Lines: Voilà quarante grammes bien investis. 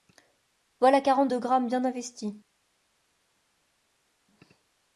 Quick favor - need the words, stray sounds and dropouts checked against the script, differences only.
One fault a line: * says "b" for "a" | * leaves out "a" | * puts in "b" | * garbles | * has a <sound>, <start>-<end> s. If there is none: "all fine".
* puts in "deux"